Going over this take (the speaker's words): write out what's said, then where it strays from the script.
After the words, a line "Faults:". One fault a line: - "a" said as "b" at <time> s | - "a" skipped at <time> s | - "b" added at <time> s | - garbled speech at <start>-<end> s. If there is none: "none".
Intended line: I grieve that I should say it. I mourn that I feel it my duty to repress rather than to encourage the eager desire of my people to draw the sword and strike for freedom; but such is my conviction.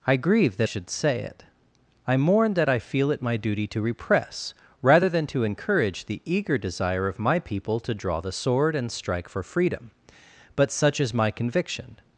I grieve that should say it. I mourn that I feel it my duty to repress rather than to encourage the eager desire of my people to draw the sword and strike for freedom; but such is my conviction.
Faults:
- "I" skipped at 0.7 s